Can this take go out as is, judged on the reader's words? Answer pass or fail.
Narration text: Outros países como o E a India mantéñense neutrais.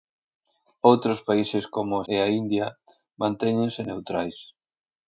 pass